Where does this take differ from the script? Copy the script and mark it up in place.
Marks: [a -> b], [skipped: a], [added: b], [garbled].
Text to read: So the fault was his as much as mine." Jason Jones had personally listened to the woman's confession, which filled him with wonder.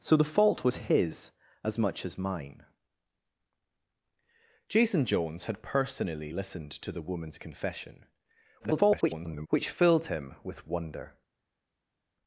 So the fault was his as much as mine." Jason Jones had personally listened to the woman's confession, [garbled] which filled him with wonder.